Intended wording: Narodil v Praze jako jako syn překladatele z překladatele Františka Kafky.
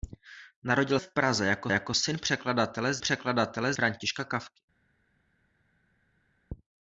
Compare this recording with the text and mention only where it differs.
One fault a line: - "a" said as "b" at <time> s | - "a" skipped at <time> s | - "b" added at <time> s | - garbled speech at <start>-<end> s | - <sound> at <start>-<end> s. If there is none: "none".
none